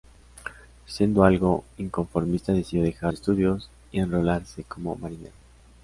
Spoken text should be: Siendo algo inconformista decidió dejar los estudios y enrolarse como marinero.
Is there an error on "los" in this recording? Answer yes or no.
yes